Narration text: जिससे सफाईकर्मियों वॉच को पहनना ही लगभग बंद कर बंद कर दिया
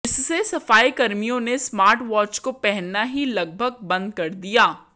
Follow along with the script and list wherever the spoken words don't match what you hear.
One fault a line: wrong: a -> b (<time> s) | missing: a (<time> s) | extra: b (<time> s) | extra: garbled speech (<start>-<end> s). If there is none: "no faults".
extra: ने स्मार्ट (1.4 s)
missing: बंद कर (4.3 s)